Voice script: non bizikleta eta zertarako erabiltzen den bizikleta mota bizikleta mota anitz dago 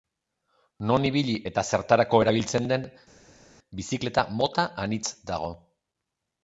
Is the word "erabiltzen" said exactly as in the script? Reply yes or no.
yes